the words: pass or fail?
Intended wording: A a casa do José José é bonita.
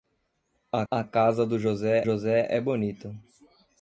pass